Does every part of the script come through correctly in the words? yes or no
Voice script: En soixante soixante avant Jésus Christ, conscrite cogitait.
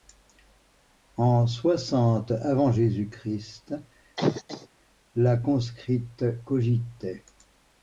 no